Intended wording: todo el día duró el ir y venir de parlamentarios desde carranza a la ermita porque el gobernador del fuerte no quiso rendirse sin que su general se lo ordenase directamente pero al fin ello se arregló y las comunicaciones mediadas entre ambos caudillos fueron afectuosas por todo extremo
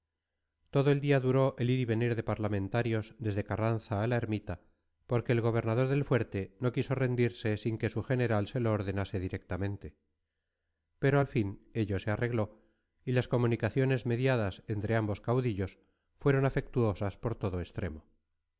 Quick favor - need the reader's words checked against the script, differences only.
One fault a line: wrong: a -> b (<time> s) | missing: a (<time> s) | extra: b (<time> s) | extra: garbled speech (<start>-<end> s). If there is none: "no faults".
no faults